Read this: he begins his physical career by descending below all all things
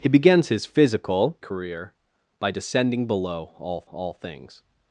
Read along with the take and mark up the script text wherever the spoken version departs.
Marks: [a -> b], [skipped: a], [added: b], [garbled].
he begins his physical career by descending below all all things